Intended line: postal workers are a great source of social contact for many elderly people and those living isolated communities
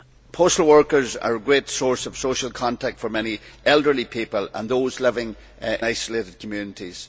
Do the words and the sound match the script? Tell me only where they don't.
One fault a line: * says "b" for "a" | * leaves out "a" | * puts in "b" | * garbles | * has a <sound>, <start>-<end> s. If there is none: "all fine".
all fine